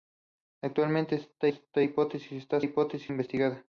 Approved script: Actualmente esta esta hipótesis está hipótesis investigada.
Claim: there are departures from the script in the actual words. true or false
false